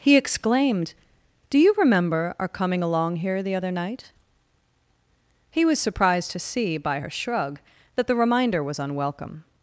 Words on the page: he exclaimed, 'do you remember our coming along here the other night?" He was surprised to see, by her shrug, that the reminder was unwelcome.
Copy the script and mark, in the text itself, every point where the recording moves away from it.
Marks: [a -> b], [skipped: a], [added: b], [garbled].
he exclaimed, 'do you remember our coming along here the other night?" He was surprised to see, by her shrug, that the reminder was unwelcome.